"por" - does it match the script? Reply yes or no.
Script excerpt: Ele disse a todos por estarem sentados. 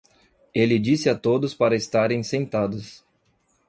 no